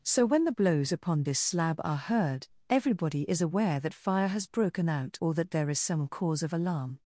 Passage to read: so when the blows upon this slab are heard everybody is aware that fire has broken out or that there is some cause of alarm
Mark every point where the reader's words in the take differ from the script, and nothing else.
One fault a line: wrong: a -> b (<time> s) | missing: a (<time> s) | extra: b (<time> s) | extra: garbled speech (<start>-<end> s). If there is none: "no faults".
no faults